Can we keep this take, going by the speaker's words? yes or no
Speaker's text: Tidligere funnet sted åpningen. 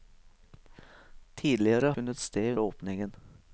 yes